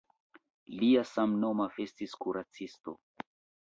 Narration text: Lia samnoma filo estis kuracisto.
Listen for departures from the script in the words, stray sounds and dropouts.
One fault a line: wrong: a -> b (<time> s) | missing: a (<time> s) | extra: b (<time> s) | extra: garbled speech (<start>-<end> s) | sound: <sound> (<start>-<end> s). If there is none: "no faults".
missing: filo (1.7 s)